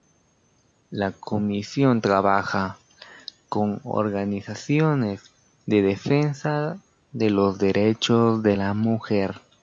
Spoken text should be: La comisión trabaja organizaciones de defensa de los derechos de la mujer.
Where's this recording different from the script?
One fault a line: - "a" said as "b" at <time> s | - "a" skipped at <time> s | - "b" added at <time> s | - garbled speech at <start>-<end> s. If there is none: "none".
- "con" added at 3.5 s